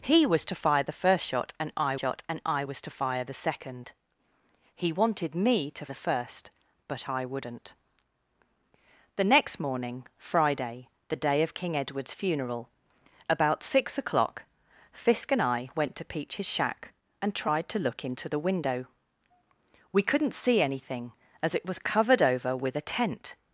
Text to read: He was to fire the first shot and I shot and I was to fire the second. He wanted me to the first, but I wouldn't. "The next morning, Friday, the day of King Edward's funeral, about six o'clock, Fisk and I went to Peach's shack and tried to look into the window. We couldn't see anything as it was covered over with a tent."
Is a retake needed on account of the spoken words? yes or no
no